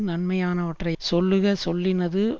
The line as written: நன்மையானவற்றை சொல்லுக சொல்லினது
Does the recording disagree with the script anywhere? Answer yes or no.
no